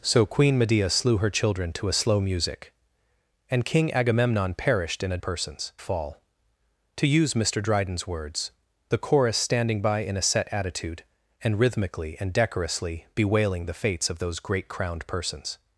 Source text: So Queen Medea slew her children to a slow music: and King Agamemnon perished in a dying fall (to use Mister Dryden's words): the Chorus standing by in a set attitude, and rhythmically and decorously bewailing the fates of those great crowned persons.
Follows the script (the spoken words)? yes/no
no